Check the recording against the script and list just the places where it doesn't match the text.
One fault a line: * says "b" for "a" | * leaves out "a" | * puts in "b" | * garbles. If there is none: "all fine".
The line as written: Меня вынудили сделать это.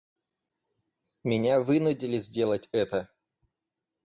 all fine